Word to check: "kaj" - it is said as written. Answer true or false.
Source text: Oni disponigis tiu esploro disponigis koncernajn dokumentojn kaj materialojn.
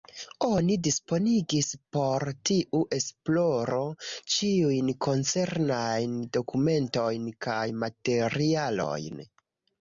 true